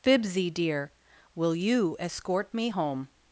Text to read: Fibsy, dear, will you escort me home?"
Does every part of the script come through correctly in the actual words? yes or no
yes